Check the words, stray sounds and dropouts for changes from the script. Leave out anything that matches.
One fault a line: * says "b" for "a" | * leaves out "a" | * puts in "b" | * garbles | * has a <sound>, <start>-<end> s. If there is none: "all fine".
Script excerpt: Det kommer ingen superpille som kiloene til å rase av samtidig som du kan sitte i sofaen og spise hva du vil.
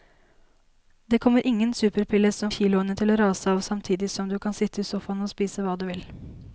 all fine